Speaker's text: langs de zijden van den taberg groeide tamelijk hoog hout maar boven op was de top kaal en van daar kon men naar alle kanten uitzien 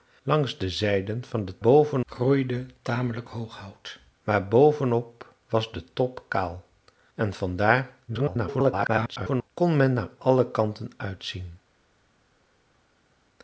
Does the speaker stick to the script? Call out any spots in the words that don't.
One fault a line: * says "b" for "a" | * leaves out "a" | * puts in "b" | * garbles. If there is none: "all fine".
* says "boven" for "taberg"
* garbles